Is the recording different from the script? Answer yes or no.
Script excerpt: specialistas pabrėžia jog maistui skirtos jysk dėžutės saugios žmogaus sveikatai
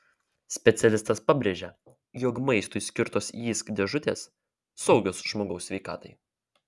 no